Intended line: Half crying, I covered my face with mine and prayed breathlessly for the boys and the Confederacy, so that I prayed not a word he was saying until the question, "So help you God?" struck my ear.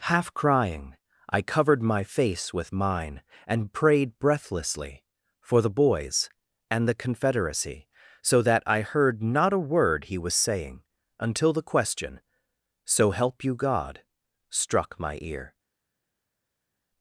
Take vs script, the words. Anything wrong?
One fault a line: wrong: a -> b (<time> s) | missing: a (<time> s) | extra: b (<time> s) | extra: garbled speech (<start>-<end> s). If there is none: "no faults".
wrong: prayed -> heard (8.8 s)